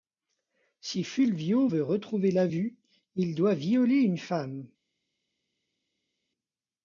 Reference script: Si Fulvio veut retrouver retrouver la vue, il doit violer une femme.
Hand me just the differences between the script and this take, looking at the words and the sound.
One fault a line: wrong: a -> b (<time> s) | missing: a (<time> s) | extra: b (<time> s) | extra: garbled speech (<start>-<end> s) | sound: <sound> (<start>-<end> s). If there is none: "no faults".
missing: retrouver (2.3 s)